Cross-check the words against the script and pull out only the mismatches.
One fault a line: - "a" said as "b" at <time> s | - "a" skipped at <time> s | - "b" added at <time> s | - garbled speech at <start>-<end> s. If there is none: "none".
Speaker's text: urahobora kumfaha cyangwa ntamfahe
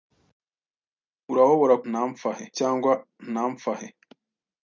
- "kumfaha" said as "ntamfahe" at 1.9 s